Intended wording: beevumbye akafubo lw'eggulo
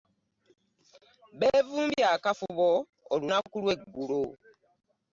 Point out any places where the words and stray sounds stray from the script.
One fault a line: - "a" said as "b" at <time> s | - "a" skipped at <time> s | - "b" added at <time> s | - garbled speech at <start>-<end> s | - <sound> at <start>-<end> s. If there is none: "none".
- "olunaku" added at 3.1 s